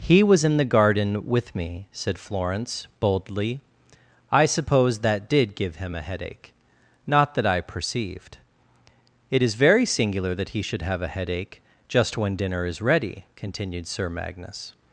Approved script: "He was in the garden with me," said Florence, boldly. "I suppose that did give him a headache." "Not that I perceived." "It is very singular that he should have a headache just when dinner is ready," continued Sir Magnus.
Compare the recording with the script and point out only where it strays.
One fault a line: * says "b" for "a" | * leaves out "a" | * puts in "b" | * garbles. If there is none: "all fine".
all fine